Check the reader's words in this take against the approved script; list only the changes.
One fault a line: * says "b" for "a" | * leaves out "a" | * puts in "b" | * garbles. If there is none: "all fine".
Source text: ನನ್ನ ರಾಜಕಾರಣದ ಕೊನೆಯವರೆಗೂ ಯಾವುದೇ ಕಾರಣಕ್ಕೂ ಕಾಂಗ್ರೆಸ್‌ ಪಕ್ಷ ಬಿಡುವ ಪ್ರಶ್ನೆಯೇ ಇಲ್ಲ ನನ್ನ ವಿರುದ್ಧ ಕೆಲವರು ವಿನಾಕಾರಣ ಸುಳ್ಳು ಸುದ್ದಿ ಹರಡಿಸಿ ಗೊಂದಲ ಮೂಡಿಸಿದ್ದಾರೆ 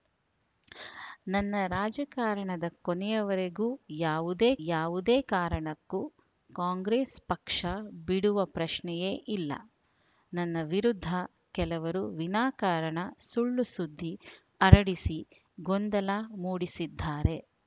* puts in "ಯಾವುದೇ"